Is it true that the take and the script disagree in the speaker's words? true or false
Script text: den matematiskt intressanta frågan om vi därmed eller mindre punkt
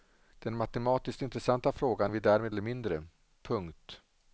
false